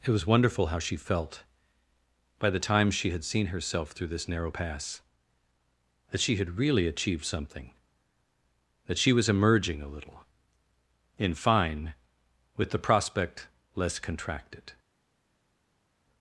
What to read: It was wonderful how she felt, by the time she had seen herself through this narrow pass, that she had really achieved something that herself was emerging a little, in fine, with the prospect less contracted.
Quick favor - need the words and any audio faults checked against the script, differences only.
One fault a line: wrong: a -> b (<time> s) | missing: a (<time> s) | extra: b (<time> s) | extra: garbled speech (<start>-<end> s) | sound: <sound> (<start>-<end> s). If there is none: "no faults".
wrong: herself -> she (9.0 s)